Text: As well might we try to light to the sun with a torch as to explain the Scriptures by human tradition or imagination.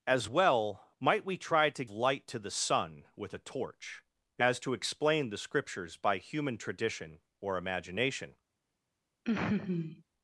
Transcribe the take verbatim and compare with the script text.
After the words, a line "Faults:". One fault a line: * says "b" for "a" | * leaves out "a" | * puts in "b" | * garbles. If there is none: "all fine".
As well might we try to light to the sun with a torch as to explain the Scriptures by human tradition or imagination.
Faults:
all fine